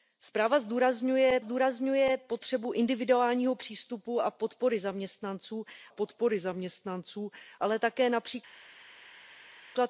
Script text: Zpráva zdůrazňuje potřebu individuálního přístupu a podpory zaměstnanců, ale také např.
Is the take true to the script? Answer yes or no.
no